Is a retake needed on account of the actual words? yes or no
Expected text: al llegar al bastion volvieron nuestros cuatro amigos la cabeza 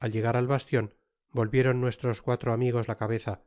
no